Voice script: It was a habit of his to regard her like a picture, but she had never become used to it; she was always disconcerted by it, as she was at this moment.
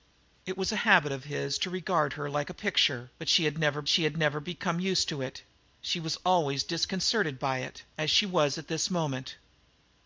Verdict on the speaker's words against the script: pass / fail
fail